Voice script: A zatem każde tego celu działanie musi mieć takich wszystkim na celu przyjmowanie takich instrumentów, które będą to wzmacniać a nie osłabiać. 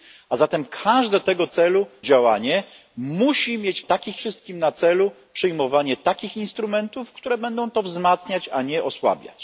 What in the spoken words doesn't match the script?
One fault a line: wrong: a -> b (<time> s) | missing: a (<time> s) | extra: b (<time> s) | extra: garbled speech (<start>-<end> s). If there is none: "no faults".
no faults